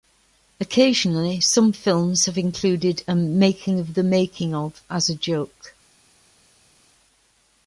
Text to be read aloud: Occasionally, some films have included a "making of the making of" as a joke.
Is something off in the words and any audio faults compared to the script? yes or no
no